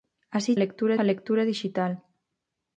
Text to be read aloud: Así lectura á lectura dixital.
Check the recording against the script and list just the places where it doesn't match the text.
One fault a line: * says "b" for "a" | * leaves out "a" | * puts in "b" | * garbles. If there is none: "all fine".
all fine